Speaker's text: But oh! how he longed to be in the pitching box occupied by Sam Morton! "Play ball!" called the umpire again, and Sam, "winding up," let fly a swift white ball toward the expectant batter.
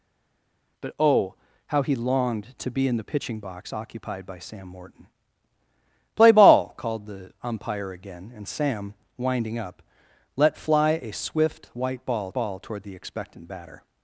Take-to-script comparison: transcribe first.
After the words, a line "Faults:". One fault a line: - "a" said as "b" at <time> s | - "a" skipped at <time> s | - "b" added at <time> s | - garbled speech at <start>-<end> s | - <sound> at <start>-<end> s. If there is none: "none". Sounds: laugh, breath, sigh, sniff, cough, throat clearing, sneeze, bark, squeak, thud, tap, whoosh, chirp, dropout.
But oh! how he longed to be in the pitching box occupied by Sam Morton! "Play ball!" called the umpire again, and Sam, "winding up," let fly a swift white ball ball toward the expectant batter.
Faults:
- "ball" added at 12.3 s